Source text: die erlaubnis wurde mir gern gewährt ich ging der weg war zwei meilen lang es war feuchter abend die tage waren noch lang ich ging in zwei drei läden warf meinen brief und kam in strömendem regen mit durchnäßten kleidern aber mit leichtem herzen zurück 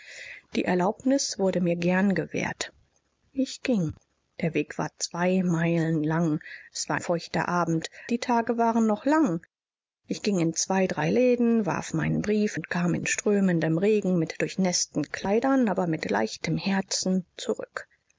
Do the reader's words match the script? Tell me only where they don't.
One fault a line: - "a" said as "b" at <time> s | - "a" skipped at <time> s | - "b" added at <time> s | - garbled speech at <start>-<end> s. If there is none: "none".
none